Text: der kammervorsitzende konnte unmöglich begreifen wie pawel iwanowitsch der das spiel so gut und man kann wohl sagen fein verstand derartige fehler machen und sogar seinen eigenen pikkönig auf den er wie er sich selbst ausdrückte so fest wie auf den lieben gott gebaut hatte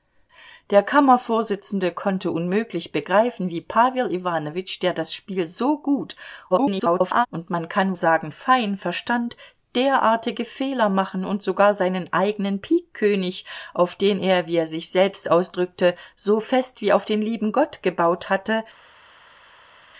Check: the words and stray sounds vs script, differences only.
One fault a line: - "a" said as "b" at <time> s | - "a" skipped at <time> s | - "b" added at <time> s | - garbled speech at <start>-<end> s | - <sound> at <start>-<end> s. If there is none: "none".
- garbled speech at 6.5-7.3 s
- "wohl" skipped at 7.9 s